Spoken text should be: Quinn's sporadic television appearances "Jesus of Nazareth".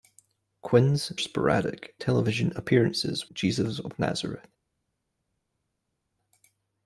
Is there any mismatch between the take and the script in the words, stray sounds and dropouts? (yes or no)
no